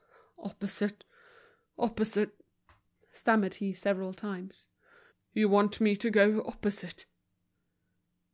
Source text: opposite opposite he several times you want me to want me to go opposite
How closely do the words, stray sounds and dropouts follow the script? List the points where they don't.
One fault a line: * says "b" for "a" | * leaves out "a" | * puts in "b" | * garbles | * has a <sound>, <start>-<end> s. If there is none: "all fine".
* puts in "stammered"
* leaves out "want me to"